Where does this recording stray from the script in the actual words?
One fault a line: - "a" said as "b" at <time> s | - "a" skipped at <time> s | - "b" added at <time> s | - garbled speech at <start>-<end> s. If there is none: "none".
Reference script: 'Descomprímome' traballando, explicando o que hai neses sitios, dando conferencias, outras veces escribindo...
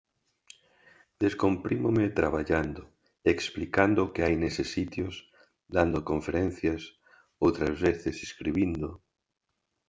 none